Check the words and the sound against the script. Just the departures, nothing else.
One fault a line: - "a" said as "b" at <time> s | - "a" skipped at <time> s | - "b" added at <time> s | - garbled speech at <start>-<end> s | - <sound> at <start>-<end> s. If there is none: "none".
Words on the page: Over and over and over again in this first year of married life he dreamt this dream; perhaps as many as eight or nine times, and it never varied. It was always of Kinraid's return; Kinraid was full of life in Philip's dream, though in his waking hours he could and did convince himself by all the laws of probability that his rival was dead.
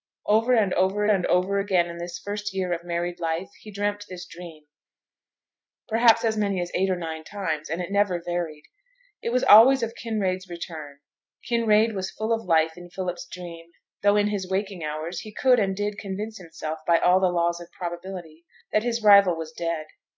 none